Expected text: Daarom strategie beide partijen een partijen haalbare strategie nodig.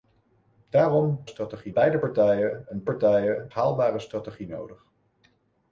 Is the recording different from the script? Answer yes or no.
no